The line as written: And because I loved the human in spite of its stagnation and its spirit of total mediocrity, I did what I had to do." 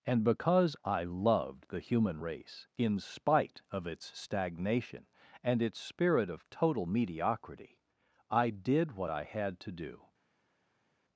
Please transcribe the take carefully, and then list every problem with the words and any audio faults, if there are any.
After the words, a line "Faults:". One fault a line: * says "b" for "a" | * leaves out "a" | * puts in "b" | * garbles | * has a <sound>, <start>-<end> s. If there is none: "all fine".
And because I loved the human race, in spite of its stagnation and its spirit of total mediocrity, I did what I had to do."
Faults:
* puts in "race"